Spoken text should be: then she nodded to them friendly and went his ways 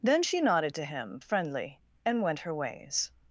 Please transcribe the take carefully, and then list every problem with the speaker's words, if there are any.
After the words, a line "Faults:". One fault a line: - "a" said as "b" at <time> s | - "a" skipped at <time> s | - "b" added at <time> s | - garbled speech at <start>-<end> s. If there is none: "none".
then she nodded to him friendly and went her ways
Faults:
- "them" said as "him" at 0.9 s
- "his" said as "her" at 2.4 s